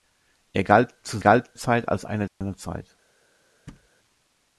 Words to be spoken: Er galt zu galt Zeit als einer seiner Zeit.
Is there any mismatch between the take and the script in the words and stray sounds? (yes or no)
yes